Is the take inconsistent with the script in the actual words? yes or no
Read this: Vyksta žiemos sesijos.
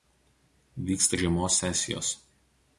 no